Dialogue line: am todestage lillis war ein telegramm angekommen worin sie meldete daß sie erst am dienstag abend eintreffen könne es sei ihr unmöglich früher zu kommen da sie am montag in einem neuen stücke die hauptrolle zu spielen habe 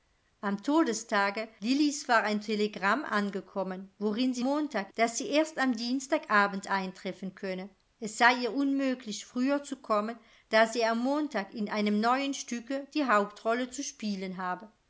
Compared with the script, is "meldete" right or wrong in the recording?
wrong